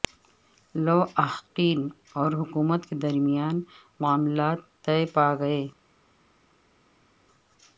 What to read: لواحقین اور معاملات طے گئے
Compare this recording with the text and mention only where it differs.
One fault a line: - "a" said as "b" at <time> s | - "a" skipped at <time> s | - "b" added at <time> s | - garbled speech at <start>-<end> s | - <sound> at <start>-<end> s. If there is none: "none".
- "حکومت کے درمیان" added at 2.3 s
- "پا" added at 5.1 s